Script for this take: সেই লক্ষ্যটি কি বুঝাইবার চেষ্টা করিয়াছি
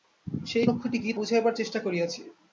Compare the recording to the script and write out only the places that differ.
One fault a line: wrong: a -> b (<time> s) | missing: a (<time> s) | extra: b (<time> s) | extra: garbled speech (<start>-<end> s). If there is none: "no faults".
no faults